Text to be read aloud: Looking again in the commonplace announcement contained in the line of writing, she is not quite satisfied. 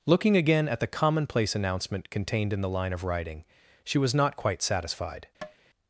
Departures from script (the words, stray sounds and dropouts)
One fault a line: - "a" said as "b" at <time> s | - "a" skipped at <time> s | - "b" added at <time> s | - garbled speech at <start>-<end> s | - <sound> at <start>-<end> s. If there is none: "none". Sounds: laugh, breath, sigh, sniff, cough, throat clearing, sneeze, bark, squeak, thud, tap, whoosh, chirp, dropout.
- "in" said as "at" at 0.7 s
- "is" said as "was" at 4.0 s
- tap at 5.4-5.6 s